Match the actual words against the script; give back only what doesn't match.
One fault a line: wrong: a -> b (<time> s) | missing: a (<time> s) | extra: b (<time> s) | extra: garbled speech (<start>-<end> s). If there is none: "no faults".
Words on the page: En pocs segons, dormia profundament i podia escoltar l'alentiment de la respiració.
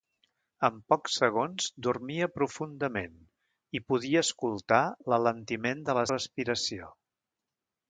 no faults